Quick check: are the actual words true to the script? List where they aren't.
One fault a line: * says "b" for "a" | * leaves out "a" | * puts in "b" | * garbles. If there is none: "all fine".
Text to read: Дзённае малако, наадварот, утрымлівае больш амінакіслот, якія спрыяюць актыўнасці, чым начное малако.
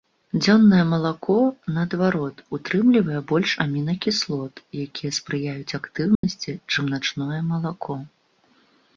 all fine